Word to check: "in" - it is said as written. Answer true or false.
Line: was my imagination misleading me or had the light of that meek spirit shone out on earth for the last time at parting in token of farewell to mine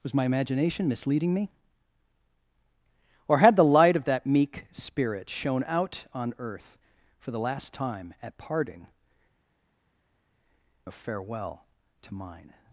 false